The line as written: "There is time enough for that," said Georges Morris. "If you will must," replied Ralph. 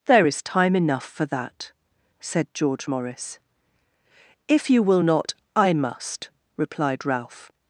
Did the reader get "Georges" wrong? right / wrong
wrong